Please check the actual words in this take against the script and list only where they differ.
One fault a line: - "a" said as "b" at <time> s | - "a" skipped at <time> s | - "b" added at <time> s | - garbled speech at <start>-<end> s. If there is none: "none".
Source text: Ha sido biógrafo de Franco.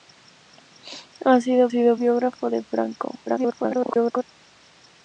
- "sido" added at 1.7 s
- garbled speech at 3.3-4.2 s